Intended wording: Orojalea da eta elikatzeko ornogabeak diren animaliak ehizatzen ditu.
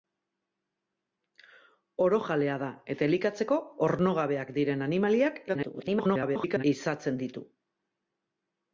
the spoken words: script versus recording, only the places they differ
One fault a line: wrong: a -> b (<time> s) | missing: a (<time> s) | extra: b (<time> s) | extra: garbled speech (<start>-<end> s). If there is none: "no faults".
extra: garbled speech (5.5-6.6 s)